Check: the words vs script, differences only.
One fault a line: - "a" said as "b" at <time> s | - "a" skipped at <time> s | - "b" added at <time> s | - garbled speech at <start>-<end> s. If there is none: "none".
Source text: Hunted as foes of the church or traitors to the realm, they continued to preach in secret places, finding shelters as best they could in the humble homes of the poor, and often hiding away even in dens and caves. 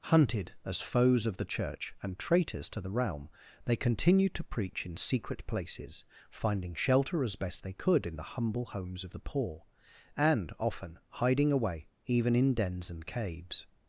- "or" said as "and" at 2.0 s
- "shelters" said as "shelter" at 6.8 s